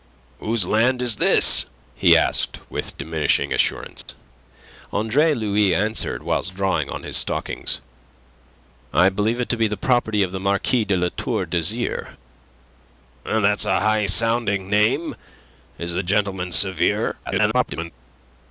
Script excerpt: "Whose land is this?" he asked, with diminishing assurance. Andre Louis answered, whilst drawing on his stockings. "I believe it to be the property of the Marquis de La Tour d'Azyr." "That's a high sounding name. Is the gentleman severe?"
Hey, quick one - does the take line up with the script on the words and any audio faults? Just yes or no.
no